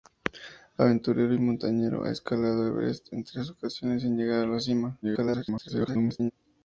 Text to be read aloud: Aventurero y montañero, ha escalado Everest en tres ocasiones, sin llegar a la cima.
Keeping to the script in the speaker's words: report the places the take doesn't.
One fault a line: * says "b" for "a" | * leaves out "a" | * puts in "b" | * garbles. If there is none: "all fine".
* garbles